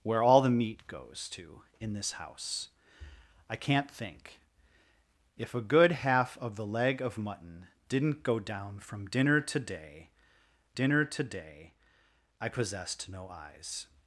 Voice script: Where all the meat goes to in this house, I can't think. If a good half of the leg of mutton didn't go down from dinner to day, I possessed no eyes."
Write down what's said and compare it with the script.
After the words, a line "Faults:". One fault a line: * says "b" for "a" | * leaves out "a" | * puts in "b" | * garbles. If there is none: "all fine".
Where all the meat goes to in this house, I can't think. If a good half of the leg of mutton didn't go down from dinner to day dinner to day, I possessed no eyes."
Faults:
* puts in "dinner to day"